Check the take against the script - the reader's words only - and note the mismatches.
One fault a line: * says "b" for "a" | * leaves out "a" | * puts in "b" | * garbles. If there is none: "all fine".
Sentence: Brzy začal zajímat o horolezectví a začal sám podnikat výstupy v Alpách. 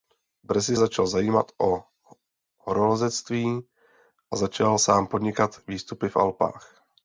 all fine